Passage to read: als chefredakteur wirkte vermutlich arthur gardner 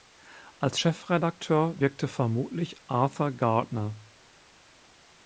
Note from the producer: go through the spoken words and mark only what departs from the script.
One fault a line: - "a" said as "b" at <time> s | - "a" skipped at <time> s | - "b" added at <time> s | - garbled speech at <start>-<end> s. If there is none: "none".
none